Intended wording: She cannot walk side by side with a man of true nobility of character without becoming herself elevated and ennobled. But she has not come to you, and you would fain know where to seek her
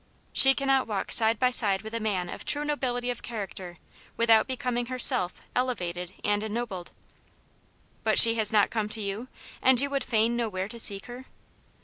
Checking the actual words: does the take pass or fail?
pass